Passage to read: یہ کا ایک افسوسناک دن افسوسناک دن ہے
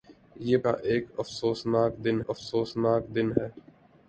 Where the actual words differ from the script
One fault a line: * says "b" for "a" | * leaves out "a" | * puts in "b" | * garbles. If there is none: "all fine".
all fine